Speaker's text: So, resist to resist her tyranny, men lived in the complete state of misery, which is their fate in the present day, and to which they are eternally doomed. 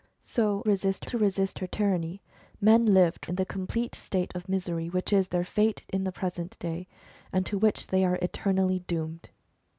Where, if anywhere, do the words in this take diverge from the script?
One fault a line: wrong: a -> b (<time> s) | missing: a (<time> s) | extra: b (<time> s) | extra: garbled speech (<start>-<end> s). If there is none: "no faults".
no faults